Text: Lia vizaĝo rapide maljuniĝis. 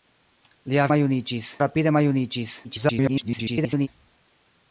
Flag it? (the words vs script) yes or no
yes